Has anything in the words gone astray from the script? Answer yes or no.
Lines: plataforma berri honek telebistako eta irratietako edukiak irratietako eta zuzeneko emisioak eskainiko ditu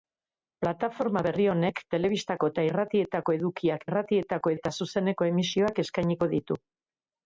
no